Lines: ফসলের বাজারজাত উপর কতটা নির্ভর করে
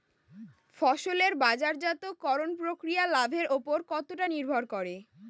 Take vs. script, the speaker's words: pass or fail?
fail